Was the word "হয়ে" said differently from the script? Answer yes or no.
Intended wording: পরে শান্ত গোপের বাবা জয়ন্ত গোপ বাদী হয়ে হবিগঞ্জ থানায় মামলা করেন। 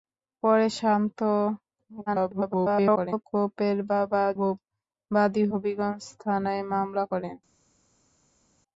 yes